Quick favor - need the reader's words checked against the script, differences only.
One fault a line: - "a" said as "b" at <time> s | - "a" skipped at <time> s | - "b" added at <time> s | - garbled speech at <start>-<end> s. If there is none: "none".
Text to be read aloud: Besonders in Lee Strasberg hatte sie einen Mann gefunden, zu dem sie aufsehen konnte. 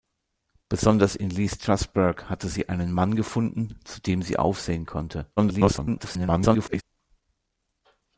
- garbled speech at 5.4-6.8 s